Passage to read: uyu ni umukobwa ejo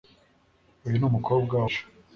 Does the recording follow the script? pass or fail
pass